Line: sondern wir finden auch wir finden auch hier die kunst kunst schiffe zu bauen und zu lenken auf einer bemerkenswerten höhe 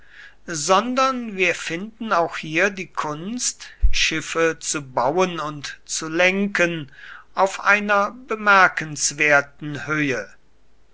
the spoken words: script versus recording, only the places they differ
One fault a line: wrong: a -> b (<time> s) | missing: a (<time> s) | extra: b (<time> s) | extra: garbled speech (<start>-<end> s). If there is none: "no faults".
missing: wir finden auch (2.4 s)
missing: kunst (3.7 s)